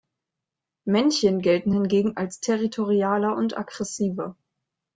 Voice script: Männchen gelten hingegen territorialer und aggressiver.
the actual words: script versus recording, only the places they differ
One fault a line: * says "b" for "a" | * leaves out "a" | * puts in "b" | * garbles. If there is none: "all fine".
* puts in "als"